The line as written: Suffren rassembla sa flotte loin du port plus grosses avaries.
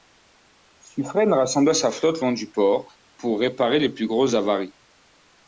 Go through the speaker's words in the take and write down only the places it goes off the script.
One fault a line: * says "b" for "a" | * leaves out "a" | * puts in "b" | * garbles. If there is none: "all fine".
* puts in "pour réparer les"